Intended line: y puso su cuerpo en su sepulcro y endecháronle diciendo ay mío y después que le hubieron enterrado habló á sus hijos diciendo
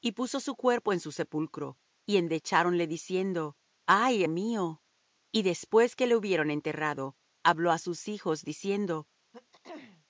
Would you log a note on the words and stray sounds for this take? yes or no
yes